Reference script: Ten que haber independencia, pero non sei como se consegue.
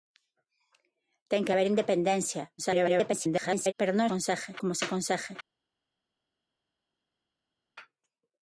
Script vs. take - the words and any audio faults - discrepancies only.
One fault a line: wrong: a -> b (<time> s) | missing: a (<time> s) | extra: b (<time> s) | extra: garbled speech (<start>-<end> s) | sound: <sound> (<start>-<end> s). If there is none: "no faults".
extra: garbled speech (2.6-3.7 s)
wrong: sei -> consegue (4.1 s)